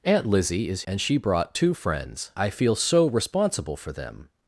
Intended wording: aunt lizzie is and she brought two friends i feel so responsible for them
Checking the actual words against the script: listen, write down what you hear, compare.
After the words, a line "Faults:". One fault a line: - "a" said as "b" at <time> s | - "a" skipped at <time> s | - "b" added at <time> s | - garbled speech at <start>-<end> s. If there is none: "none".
aunt lizzie is and she brought two friends i feel so responsible for them
Faults:
none